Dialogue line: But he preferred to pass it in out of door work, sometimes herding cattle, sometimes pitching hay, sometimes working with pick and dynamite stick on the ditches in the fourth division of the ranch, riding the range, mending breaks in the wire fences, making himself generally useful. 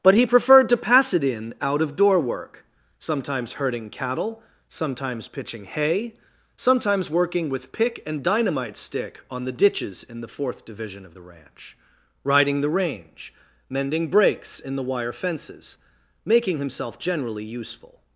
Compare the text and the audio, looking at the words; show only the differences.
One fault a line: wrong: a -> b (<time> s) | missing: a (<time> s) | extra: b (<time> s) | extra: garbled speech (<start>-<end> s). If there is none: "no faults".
no faults